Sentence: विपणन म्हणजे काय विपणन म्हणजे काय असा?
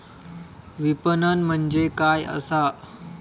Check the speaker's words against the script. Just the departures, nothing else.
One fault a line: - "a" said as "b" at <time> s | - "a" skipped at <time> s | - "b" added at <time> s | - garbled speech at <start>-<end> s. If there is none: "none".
- "विपणन म्हणजे काय" skipped at 2.2 s